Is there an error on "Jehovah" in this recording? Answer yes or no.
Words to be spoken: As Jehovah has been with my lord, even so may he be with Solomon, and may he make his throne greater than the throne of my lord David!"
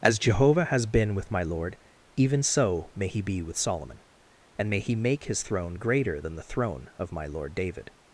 no